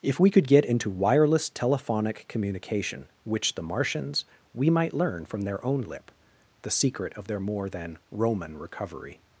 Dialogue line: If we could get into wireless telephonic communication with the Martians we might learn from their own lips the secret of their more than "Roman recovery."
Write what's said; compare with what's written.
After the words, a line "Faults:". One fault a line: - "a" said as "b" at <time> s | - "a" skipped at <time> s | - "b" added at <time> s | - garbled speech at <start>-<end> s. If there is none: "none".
If we could get into wireless telephonic communication which the Martians we might learn from their own lip the secret of their more than "Roman recovery."
Faults:
- "with" said as "which" at 3.2 s
- "lips" said as "lip" at 5.8 s